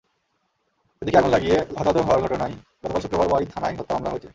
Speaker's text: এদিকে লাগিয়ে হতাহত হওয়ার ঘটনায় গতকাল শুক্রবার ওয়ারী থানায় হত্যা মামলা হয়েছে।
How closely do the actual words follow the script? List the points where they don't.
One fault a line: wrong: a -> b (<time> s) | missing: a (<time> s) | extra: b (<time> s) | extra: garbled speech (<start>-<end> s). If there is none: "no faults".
extra: আগুন (1.2 s)